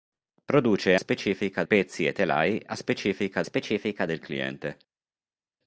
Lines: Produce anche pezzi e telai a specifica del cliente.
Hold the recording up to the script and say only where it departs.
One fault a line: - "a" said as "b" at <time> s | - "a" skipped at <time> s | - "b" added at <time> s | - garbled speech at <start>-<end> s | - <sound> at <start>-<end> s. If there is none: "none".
- "anche" said as "specifica" at 1.0 s
- "specifica" added at 3.4 s